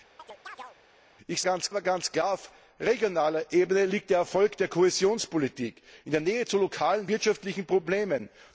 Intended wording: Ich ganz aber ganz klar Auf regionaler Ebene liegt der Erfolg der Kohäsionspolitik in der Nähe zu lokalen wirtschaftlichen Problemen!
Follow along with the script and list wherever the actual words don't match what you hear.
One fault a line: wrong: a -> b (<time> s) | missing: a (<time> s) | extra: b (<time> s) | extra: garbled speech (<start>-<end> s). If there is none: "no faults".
no faults